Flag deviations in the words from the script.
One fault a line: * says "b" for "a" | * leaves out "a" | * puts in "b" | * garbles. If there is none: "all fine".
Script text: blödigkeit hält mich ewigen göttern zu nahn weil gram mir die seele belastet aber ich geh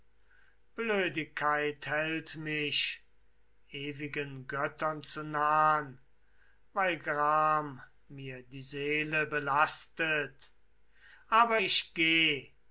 all fine